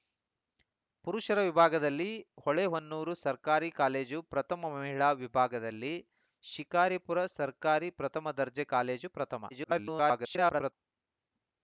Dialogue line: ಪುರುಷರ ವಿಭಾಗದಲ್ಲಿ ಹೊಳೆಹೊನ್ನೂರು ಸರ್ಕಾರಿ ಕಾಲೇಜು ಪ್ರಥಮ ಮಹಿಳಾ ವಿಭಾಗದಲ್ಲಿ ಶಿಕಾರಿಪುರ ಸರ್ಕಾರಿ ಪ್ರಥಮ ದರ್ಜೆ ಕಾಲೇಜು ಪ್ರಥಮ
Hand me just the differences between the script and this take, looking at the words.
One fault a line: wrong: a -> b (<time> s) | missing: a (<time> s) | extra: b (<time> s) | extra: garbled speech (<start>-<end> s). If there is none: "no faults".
extra: garbled speech (9.5-10.7 s)